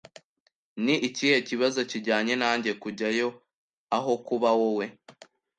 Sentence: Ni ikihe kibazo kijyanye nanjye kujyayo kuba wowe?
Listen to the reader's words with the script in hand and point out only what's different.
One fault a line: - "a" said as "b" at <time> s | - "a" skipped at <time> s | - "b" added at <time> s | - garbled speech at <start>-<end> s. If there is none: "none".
- "aho" added at 4.0 s